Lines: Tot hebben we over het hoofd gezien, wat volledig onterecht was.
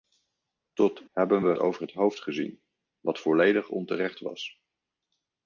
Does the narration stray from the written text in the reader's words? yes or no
no